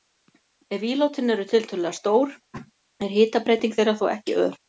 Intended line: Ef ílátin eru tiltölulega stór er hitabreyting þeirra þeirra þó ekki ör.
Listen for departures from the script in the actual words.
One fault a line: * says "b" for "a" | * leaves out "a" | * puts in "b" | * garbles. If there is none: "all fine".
* leaves out "þeirra"